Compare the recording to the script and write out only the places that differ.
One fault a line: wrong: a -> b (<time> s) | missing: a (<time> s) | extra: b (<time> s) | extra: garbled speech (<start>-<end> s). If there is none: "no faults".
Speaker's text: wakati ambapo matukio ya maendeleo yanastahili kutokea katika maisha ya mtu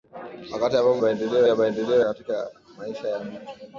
wrong: matukio -> maendeleo (1.0 s)
missing: yanastahili kutokea (2.0 s)